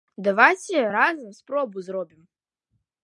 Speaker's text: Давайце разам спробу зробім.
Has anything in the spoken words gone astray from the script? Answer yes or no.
no